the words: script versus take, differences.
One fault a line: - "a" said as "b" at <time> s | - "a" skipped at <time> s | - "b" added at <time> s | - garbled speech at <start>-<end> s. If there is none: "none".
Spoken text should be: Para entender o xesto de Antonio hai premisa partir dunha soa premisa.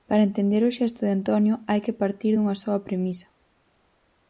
- "premisa" said as "que" at 1.9 s